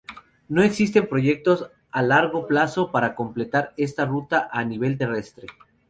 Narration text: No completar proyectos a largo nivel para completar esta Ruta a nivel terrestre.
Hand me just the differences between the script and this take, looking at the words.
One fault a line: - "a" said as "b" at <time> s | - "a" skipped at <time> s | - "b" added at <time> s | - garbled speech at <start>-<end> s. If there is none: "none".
- "completar" said as "existen" at 0.6 s
- "nivel" said as "plazo" at 2.5 s